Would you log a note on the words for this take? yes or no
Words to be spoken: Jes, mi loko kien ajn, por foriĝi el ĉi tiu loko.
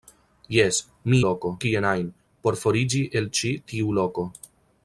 no